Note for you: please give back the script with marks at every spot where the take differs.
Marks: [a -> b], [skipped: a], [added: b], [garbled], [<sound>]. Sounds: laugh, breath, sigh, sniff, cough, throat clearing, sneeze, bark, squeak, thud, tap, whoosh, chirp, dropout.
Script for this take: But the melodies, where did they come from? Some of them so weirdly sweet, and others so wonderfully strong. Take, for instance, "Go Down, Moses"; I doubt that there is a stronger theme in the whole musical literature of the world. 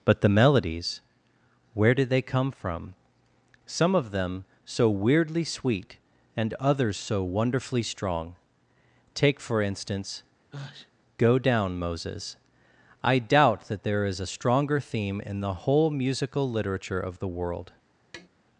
But the melodies, where did they come from? Some of them so weirdly sweet, and others so wonderfully strong. Take, for instance, [sneeze] "Go Down, Moses"; I doubt that there is a stronger theme in the whole musical literature of the world. [tap]